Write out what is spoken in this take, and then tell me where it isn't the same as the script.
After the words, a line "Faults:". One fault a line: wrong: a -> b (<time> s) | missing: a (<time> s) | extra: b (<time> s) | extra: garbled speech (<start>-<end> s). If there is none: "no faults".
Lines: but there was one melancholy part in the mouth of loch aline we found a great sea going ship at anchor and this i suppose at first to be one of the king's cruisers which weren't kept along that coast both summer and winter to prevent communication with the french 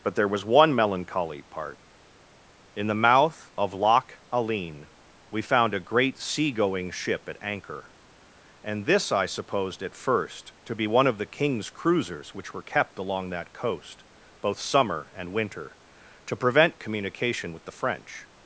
but there was one melancholy part in the mouth of loch aline we found a great sea going ship at anchor and this i supposed at first to be one of the king's cruisers which were kept along that coast both summer and winter to prevent communication with the french
Faults:
wrong: suppose -> supposed (9.3 s)
wrong: weren't -> were (12.5 s)